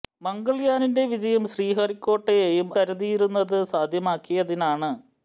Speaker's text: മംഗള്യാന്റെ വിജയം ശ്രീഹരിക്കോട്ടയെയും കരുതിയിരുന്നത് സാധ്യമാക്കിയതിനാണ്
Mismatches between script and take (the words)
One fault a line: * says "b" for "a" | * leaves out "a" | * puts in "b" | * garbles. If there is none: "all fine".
all fine